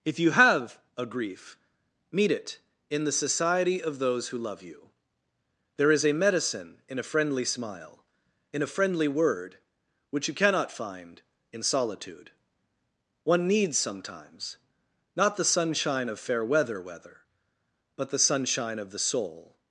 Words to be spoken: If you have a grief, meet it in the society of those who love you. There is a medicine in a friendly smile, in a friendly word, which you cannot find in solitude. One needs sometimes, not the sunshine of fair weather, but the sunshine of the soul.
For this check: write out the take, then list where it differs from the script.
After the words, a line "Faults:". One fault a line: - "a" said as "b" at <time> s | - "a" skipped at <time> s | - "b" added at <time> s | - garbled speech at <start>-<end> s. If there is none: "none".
If you have a grief, meet it in the society of those who love you. There is a medicine in a friendly smile, in a friendly word, which you cannot find in solitude. One needs sometimes, not the sunshine of fair weather weather, but the sunshine of the soul.
Faults:
- "weather" added at 16.8 s